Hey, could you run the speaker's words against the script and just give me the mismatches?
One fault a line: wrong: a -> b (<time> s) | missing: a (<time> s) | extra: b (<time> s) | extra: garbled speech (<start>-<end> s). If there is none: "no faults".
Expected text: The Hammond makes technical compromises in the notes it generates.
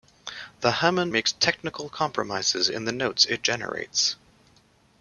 no faults